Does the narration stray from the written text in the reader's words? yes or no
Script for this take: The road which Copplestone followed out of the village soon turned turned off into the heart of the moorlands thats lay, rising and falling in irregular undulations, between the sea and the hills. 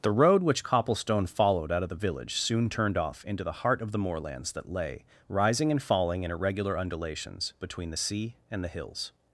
yes